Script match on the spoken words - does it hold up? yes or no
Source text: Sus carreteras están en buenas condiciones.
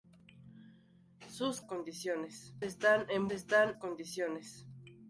no